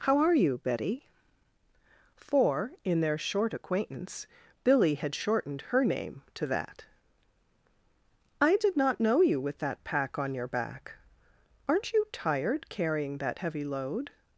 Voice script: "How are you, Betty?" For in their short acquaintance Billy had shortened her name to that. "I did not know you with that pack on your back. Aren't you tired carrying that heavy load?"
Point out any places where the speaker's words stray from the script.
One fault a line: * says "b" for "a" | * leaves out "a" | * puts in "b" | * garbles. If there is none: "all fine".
all fine